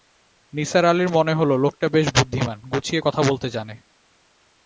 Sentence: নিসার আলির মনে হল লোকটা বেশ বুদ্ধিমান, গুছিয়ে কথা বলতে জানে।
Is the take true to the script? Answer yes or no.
yes